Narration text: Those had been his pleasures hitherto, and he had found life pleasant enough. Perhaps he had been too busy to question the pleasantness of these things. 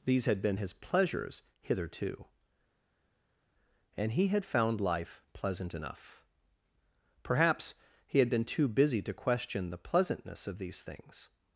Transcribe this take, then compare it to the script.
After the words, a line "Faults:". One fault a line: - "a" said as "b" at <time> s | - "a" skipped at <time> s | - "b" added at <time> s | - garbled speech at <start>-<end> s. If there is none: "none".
These had been his pleasures hitherto, and he had found life pleasant enough. Perhaps he had been too busy to question the pleasantness of these things.
Faults:
- "Those" said as "These" at 0.1 s